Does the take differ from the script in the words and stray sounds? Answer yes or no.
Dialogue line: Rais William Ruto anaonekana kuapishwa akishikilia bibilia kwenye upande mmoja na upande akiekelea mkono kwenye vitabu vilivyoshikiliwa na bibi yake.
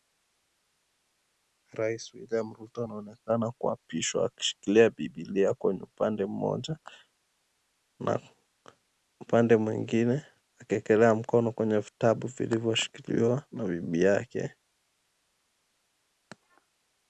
yes